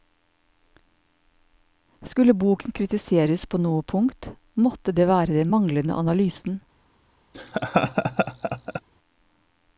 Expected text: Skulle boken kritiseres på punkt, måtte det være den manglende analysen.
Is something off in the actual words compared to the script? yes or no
yes